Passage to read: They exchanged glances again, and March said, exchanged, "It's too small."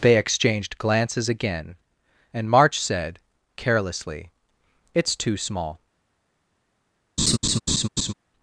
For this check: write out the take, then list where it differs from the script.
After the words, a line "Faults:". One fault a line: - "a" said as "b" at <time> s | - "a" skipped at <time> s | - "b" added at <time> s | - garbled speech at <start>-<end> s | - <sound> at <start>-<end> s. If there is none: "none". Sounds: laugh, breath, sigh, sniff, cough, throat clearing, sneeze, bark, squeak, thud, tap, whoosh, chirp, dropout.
They exchanged glances again, and March said, carelessly, "It's too small."
Faults:
- "exchanged" said as "carelessly" at 3.6 s
- laugh at 7.2-8.1 s